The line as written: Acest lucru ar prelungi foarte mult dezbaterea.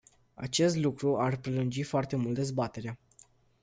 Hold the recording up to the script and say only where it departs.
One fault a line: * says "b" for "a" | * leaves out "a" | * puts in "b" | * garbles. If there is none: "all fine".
all fine